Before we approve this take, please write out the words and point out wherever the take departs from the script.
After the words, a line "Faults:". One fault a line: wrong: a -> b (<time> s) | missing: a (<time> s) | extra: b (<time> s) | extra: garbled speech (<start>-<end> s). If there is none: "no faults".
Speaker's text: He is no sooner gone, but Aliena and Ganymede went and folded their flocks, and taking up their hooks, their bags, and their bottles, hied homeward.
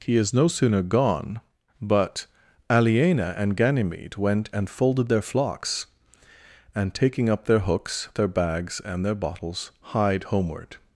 He is no sooner gone, but Aliena and Ganymede went and folded their flocks, and taking up their hooks, their bags, and their bottles, hied homeward.
Faults:
no faults